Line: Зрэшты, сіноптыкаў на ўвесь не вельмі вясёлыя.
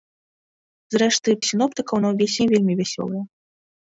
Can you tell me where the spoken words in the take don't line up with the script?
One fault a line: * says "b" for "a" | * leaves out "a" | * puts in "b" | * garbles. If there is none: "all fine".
all fine